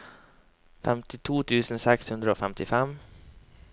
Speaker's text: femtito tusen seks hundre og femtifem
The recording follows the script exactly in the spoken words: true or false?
true